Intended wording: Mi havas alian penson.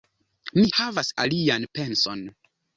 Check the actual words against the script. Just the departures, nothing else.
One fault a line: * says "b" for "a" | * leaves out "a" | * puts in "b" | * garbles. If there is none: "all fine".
all fine